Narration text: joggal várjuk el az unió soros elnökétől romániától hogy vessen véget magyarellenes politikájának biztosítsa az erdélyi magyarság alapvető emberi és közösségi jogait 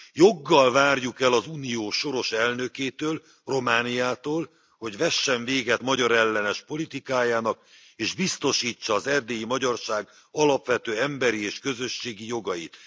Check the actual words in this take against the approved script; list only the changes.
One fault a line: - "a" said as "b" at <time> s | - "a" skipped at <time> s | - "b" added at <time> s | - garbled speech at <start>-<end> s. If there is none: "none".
- "és" added at 7.9 s